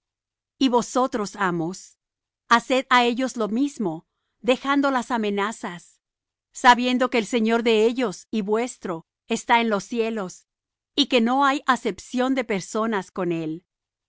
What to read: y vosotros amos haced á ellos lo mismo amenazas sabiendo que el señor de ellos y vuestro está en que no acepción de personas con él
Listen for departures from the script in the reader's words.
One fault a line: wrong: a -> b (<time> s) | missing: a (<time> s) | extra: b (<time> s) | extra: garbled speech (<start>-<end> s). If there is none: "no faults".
extra: dejando las (4.4 s)
extra: los cielos y (9.7 s)
extra: hay (11.4 s)